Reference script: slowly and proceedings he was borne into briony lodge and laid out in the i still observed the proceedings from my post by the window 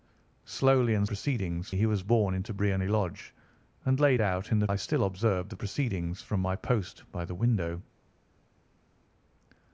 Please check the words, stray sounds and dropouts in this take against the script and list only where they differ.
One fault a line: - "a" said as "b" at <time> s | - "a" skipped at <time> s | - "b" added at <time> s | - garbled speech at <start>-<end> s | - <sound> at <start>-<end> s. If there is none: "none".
none